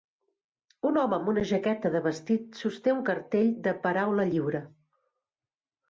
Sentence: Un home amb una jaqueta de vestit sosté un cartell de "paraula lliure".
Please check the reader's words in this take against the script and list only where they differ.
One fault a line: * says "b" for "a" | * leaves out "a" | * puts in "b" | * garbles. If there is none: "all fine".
all fine